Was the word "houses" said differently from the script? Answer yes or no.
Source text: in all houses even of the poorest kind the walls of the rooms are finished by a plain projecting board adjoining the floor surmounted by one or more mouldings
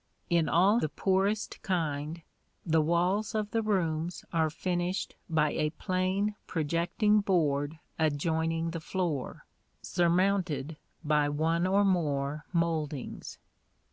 yes